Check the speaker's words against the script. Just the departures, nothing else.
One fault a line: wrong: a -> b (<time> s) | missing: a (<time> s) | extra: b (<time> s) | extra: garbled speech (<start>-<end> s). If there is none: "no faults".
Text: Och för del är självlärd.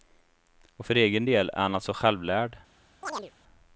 extra: egen (1.0 s)
extra: han alltså (1.6 s)